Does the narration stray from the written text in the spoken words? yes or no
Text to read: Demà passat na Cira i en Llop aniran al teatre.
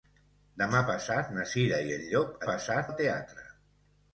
yes